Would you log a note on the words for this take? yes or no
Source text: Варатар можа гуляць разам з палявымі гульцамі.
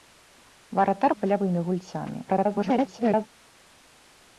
yes